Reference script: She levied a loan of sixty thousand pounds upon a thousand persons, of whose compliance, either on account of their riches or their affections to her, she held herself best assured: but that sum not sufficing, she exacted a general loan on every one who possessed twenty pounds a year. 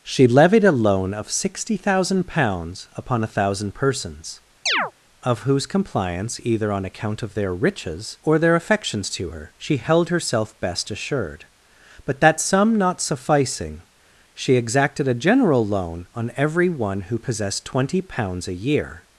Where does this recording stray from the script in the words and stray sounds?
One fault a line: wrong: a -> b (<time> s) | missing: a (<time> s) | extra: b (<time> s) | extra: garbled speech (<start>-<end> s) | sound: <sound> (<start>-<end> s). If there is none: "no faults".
sound: chirp (4.7-4.9 s)